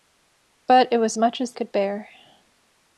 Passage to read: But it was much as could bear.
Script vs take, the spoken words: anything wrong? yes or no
no